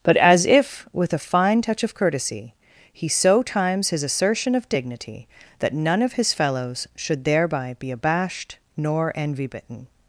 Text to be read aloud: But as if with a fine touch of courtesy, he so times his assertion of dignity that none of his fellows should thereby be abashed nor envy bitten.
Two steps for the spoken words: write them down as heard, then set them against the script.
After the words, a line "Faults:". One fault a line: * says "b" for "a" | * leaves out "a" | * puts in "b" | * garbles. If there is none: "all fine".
But as if with a fine touch of courtesy, he so times his assertion of dignity that none of his fellows should thereby be abashed nor envy bitten.
Faults:
all fine